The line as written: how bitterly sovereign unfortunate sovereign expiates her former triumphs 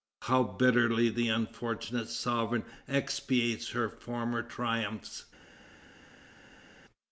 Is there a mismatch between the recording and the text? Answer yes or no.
yes